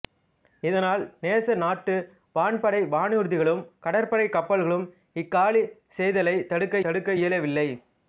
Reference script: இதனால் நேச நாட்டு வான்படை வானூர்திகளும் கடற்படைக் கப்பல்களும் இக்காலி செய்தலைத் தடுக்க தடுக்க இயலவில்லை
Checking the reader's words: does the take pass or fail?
pass